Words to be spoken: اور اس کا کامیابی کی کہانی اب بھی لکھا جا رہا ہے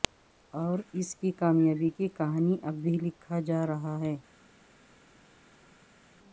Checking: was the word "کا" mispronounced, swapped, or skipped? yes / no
yes